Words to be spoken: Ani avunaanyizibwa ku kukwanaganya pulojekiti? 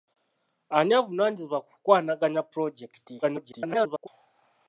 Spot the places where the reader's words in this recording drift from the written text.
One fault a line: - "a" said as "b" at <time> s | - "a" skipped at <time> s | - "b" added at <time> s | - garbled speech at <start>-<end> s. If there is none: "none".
- garbled speech at 3.2-4.1 s